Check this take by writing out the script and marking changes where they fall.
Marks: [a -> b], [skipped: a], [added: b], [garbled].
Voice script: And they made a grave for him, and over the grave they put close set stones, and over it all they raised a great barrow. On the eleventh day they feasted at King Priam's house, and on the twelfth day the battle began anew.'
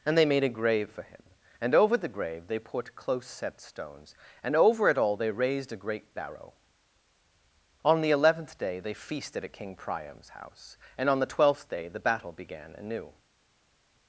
And they made a grave for him, and over the grave they put close set stones, and over it all they raised a great barrow. On the eleventh day they feasted at King Priam's house, and on the twelfth day the battle began anew.'